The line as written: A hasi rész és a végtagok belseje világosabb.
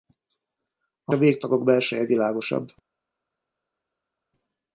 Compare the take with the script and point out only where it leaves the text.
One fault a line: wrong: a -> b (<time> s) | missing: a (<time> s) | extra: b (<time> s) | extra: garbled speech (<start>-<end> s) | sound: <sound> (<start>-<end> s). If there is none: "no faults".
missing: hasi rész és (1.1 s)